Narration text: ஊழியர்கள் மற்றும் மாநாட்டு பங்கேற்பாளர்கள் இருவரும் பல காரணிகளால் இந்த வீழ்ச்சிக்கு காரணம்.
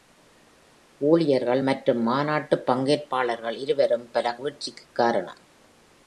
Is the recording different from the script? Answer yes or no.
yes